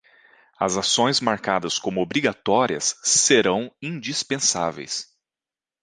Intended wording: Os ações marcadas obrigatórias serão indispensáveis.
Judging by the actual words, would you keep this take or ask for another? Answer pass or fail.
fail